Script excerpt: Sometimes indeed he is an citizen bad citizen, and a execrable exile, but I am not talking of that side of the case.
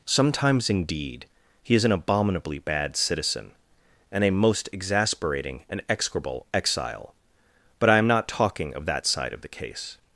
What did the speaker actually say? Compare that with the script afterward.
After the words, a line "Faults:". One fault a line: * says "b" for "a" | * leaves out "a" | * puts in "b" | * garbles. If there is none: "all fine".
Sometimes indeed he is an abominably bad citizen, and a most exasperating and execrable exile, but I am not talking of that side of the case.
Faults:
* says "abominably" for "citizen"
* puts in "most exasperating and"